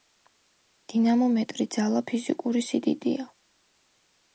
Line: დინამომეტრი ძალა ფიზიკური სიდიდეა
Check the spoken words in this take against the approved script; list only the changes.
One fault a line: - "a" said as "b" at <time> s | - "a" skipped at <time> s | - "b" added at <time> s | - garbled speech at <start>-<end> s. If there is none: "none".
none